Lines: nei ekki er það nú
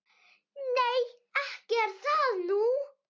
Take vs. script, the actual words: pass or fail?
pass